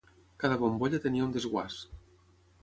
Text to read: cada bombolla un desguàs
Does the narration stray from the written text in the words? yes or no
yes